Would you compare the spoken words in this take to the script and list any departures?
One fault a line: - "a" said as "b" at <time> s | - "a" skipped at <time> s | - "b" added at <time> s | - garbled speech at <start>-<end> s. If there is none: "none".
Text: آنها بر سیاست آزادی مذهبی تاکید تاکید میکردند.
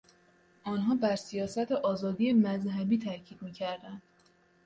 - "تاکید" skipped at 3.4 s